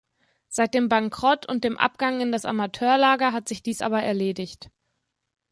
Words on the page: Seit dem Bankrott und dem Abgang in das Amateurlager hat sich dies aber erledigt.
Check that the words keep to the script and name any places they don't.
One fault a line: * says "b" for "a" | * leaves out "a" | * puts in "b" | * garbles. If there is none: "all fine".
all fine